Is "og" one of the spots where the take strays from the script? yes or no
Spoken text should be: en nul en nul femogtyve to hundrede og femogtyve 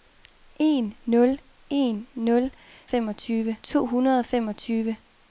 no